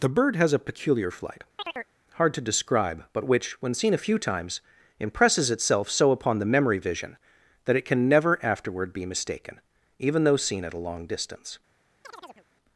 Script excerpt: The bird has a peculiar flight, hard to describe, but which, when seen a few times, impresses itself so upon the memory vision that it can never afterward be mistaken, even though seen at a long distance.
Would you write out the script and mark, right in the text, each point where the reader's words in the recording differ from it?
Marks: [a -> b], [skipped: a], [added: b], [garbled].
The bird has a peculiar flight, hard to describe, but which, when seen a few times, impresses itself so upon the memory vision that it can never afterward be mistaken, even though seen at a long distance.